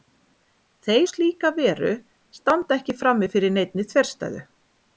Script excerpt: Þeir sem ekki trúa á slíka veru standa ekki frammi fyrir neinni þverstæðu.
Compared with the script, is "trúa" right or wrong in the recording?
wrong